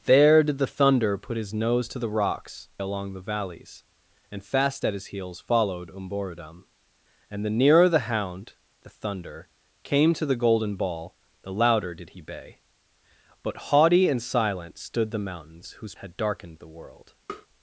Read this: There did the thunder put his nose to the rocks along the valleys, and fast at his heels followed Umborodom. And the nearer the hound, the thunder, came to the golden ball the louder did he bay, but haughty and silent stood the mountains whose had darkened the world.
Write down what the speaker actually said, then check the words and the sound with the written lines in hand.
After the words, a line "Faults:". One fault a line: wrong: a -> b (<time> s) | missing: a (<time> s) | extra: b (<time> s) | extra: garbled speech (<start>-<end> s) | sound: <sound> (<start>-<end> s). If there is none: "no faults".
There did the thunder put his nose to the rocks along the valleys, and fast at his heels followed Umborodom. And the nearer the hound, the thunder, came to the golden ball the louder did he bay, but haughty and silent stood the mountains whose had darkened the world.
Faults:
sound: tap (17.3-17.5 s)